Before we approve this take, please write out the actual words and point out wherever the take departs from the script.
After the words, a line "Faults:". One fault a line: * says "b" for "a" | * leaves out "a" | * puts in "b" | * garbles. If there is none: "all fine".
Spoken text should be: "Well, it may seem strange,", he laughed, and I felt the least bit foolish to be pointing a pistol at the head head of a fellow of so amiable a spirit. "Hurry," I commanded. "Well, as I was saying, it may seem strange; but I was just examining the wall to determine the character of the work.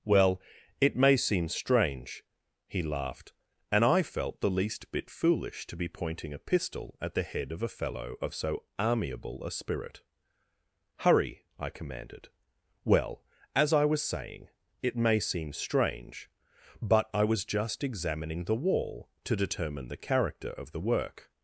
"Well, it may seem strange,", he laughed, and I felt the least bit foolish to be pointing a pistol at the head of a fellow of so amiable a spirit. "Hurry," I commanded. "Well, as I was saying, it may seem strange; but I was just examining the wall to determine the character of the work.
Faults:
* leaves out "head"